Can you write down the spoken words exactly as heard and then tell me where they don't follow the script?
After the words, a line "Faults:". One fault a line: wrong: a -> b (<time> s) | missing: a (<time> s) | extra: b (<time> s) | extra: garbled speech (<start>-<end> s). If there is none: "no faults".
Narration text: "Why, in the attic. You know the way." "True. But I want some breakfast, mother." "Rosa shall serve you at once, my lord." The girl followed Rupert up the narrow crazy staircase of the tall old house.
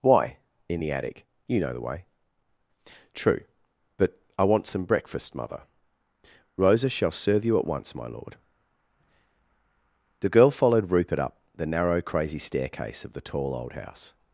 "Why, in the attic. You know the way." "True. But I want some breakfast, mother." "Rosa shall serve you at once, my lord." The girl followed Rupert up the narrow crazy staircase of the tall old house.
Faults:
no faults